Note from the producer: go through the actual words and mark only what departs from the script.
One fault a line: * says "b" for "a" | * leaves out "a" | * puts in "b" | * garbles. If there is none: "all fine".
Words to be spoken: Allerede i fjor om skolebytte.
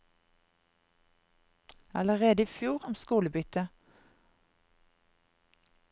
all fine